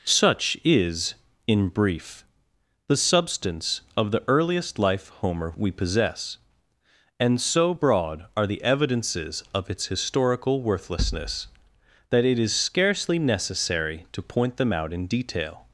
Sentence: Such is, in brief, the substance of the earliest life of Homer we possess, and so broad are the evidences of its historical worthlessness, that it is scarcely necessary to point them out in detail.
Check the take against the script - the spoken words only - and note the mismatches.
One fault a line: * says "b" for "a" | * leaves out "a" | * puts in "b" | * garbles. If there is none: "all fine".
* leaves out "of"